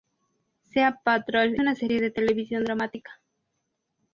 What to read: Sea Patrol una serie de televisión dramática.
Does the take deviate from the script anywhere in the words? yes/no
no